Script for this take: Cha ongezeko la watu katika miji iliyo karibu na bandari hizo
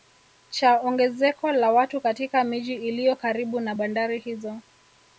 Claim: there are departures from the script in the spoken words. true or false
false